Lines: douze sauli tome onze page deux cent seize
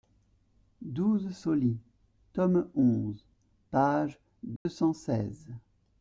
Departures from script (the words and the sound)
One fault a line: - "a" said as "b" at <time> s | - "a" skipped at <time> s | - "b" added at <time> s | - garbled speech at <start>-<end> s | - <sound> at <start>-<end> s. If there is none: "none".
- dropout at 4.6-4.7 s